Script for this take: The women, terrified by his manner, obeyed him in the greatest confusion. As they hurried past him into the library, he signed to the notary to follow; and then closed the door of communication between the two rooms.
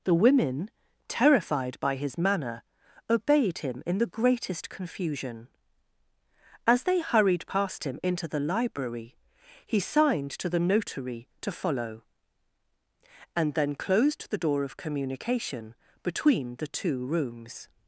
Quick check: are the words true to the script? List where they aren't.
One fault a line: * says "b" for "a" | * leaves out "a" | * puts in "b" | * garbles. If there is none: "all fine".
all fine